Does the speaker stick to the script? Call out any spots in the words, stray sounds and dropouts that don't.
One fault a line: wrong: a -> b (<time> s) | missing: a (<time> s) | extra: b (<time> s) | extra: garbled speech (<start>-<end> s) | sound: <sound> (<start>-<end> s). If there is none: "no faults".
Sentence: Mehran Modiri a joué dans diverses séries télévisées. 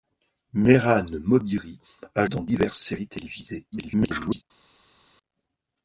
missing: joué (2.2 s)
extra: garbled speech (3.7-4.4 s)